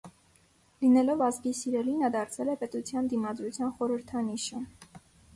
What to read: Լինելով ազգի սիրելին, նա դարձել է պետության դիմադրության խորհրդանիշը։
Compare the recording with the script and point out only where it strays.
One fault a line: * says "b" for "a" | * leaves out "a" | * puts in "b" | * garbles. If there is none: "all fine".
all fine